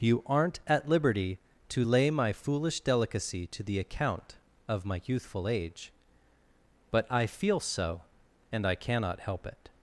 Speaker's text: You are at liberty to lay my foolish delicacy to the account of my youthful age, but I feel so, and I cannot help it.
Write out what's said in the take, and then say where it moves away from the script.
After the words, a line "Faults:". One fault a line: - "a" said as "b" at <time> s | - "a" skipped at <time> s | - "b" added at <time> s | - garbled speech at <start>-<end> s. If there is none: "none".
You aren't at liberty to lay my foolish delicacy to the account of my youthful age, but I feel so, and I cannot help it.
Faults:
- "are" said as "aren't" at 0.2 s